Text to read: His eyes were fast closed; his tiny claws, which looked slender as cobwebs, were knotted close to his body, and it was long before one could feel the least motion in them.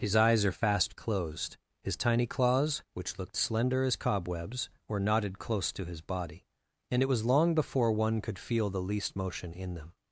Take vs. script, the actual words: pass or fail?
fail